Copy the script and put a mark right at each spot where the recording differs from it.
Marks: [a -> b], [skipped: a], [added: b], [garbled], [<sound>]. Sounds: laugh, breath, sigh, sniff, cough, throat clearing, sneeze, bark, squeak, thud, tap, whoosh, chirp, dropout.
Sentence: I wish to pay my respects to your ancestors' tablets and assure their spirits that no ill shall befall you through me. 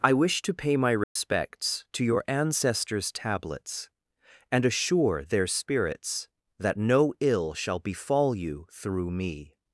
I wish to pay my respects [dropout] to your ancestors' tablets and assure their spirits that no ill shall befall you through me.